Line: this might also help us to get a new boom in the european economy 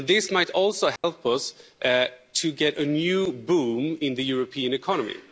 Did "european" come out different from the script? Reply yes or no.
no